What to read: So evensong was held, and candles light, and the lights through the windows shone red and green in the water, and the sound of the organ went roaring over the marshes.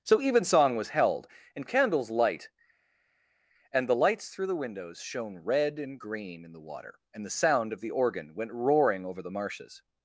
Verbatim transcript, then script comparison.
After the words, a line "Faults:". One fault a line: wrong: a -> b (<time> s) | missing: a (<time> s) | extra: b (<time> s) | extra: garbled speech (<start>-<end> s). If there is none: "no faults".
So evensong was held, and candles light, and the lights through the windows shone red and green in the water, and the sound of the organ went roaring over the marshes.
Faults:
no faults